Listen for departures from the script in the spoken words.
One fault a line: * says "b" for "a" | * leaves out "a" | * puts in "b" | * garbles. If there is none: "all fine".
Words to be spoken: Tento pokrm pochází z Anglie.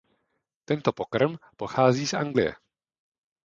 all fine